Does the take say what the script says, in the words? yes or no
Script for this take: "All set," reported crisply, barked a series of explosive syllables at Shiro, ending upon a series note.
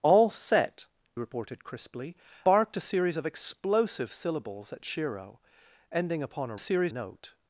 yes